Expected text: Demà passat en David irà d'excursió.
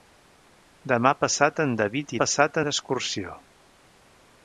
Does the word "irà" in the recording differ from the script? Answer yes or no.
yes